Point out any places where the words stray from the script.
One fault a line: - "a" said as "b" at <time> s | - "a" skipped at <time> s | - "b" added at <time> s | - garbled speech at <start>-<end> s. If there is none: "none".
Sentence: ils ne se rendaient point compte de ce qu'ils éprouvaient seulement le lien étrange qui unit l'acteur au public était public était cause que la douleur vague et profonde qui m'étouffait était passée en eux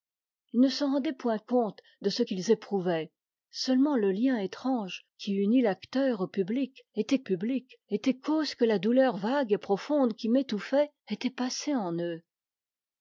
none